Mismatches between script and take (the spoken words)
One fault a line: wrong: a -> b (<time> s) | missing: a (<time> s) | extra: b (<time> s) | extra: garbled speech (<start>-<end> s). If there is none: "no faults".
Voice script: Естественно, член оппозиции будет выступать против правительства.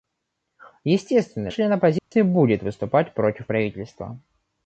no faults